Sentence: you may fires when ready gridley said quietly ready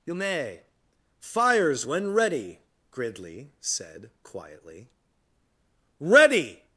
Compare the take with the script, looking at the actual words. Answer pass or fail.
pass